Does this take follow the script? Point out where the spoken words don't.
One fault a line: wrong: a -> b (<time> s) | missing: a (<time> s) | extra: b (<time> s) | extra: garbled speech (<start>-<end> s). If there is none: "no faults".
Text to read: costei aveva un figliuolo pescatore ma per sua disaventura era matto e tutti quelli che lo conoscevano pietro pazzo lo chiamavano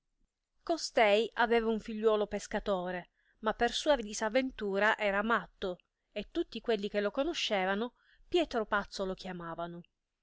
no faults